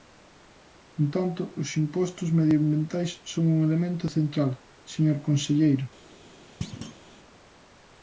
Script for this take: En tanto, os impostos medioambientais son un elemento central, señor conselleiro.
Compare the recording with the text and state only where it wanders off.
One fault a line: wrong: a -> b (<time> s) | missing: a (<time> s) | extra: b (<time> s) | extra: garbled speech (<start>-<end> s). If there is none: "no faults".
no faults